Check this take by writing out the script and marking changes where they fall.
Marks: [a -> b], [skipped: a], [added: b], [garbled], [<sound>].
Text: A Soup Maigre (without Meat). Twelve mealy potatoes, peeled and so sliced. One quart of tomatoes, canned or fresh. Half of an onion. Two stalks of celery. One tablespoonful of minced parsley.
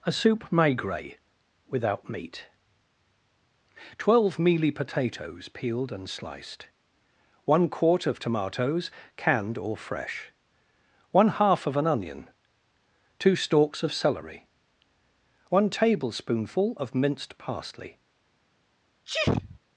A Soup Maigre (without Meat). Twelve mealy potatoes, peeled and [skipped: so] sliced. One quart of tomatoes, canned or fresh. [added: One] Half of an onion. Two stalks of celery. One tablespoonful of minced parsley. [sneeze]